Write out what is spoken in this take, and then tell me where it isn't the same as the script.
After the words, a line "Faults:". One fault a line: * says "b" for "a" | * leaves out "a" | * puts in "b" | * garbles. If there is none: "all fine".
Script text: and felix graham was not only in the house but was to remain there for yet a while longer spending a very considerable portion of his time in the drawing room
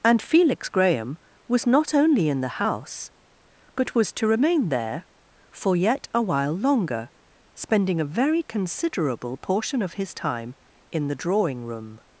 and felix graham was not only in the house but was to remain there for yet a while longer spending a very considerable portion of his time in the drawing room
Faults:
all fine